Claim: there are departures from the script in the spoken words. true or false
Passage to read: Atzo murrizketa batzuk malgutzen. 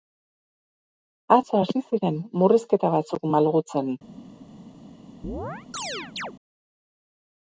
true